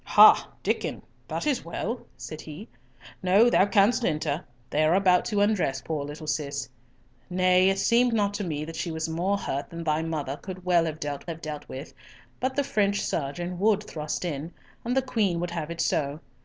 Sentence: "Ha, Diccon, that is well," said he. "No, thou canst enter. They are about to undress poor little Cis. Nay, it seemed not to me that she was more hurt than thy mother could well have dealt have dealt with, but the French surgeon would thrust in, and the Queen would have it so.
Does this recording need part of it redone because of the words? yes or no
no